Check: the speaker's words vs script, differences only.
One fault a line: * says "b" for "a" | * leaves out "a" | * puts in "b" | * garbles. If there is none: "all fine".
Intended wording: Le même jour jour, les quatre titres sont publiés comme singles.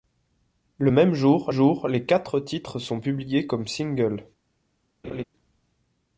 all fine